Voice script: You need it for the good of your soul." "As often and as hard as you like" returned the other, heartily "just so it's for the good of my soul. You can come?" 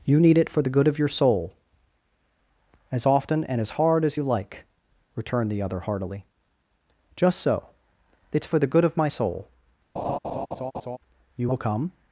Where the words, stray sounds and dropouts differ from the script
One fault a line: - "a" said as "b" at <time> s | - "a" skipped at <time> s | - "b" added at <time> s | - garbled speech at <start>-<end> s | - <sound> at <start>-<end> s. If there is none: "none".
- laugh at 10.0-11.0 s
- "can" said as "will" at 11.5 s